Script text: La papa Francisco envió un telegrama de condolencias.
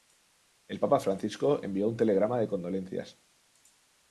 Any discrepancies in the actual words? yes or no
yes